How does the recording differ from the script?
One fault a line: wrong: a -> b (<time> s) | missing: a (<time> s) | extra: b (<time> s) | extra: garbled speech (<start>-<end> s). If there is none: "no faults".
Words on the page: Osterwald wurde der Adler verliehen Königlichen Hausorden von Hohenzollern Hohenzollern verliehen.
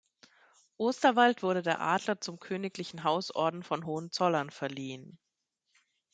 wrong: verliehen -> zum (2.2 s)
missing: Hohenzollern (4.5 s)